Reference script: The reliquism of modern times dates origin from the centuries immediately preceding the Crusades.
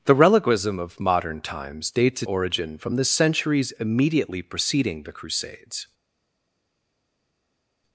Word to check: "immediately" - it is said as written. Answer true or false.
true